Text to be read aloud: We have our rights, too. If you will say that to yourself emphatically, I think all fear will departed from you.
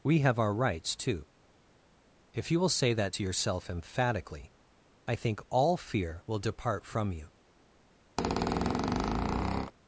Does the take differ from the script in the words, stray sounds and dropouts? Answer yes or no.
yes